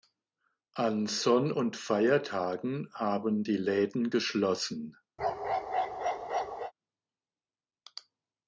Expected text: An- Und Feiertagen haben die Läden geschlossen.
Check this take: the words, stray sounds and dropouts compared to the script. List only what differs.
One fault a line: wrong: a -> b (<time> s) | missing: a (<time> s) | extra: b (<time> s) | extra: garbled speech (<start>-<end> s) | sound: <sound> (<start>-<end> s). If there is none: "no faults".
extra: Sonn (1.1 s)
sound: bark (5.2-6.7 s)